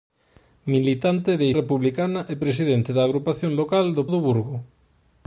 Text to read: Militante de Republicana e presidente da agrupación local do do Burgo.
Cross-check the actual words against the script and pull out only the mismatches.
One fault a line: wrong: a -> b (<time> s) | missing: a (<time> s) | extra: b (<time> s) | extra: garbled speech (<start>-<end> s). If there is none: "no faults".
no faults